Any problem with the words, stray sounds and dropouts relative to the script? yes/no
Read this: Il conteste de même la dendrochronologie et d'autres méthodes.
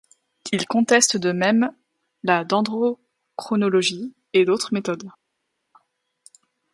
no